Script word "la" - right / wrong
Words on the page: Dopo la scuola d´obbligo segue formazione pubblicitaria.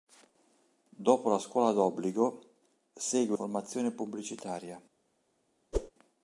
right